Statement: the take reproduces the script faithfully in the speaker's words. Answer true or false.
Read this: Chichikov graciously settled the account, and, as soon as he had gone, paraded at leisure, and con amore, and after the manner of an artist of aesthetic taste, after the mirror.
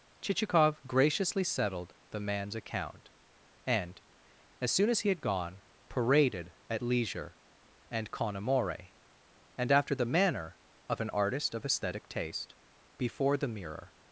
false